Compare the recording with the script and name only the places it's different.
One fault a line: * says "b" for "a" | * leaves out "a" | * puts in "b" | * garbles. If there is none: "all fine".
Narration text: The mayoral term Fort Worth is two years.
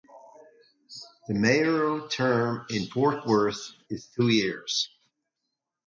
* puts in "in"